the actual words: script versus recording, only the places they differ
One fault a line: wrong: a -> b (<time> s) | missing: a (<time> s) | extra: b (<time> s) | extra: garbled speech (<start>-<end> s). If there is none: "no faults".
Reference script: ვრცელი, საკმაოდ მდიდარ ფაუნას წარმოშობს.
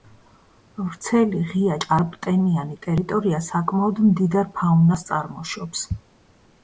extra: ღია ჭარბტენიანი ტერიტორია (1.5 s)